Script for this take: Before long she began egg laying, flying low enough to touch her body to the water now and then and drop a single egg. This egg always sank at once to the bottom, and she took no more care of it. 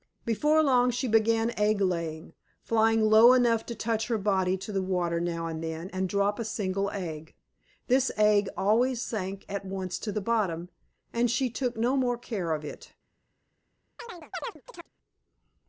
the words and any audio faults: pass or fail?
fail